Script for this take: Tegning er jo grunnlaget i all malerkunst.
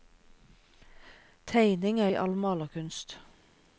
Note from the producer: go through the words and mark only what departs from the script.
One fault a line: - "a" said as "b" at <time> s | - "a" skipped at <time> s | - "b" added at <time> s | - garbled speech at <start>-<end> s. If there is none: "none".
- "jo grunnlaget" skipped at 2.1 s